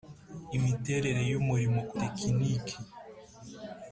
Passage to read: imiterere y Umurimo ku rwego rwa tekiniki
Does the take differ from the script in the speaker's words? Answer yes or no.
yes